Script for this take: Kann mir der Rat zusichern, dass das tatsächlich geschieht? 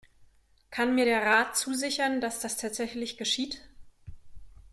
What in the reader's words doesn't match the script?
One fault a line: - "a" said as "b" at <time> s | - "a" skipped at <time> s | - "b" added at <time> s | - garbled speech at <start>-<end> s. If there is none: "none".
none